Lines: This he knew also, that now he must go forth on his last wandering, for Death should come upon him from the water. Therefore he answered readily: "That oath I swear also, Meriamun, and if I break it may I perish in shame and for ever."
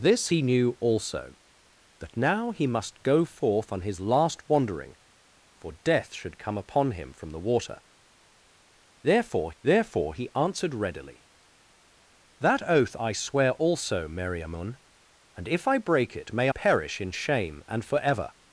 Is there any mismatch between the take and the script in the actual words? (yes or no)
yes